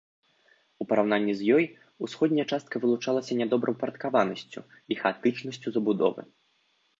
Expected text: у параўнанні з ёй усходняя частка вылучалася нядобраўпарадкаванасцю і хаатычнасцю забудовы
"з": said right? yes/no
yes